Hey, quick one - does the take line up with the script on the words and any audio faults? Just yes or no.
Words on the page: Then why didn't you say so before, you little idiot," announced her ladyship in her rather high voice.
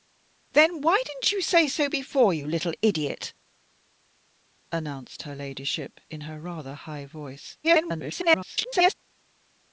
no